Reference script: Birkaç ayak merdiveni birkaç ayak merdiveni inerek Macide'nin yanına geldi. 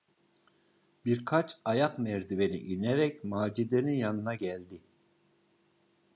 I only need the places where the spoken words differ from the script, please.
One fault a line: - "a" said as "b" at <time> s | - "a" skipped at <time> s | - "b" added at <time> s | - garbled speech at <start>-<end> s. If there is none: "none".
- "birkaç ayak merdiveni" skipped at 2.6 s